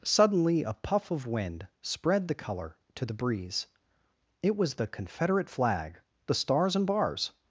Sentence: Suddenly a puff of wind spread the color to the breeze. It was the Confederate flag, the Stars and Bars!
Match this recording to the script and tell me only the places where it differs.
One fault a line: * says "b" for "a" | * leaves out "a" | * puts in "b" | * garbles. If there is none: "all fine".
all fine